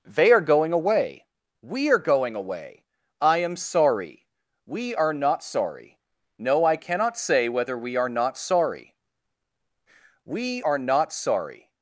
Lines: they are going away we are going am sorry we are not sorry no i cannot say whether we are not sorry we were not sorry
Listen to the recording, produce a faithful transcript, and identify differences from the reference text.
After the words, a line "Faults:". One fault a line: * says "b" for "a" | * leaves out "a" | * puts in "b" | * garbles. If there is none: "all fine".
they are going away we are going away i am sorry we are not sorry no i cannot say whether we are not sorry we are not sorry
Faults:
* puts in "away i"
* says "are" for "were"